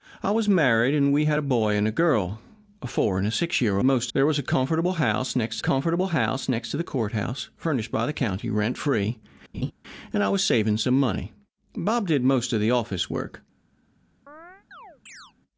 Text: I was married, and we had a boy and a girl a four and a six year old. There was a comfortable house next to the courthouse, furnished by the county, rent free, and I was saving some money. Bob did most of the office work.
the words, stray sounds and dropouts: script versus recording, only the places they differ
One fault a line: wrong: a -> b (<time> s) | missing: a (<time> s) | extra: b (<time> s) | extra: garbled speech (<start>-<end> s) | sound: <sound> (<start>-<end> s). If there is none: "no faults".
wrong: old -> most (3.8 s)
extra: comfortable house next (5.6 s)
sound: laugh (9.5-9.7 s)
sound: chirp (14.3-15.3 s)